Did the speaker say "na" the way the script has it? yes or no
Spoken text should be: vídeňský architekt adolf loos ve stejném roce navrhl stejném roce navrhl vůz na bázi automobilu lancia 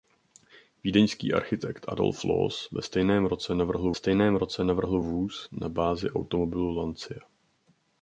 yes